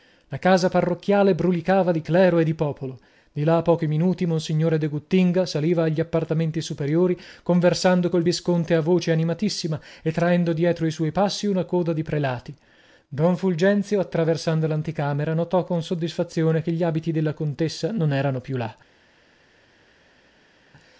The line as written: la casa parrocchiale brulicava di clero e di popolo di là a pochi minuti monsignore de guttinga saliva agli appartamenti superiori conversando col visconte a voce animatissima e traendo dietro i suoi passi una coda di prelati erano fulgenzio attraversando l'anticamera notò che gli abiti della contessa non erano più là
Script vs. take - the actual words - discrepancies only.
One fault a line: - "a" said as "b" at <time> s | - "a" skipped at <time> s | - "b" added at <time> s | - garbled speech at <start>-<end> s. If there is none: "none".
- "erano" said as "don" at 13.1 s
- "con soddisfazione" added at 15.6 s